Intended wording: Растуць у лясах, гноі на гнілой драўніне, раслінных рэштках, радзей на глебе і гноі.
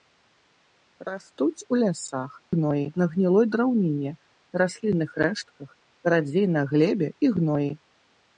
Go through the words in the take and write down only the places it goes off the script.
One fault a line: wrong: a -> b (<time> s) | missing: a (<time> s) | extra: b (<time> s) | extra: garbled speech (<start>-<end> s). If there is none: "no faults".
no faults